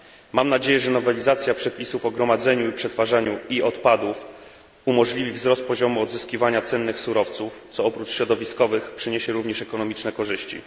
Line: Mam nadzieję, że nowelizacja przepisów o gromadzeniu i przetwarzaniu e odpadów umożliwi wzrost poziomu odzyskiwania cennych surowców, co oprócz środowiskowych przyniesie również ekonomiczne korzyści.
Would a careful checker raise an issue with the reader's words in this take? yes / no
no